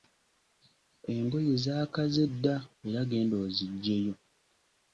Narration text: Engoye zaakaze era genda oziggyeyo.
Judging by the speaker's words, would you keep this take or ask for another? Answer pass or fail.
fail